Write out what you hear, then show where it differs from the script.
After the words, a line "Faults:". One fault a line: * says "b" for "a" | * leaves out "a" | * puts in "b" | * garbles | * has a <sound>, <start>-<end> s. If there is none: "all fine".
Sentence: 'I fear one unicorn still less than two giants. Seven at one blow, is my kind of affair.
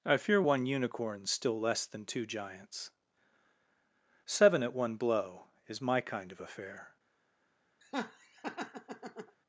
'I fear one unicorn still less than two giants. Seven at one blow, is my kind of affair.
Faults:
* has a laugh, 7.8-9.4 s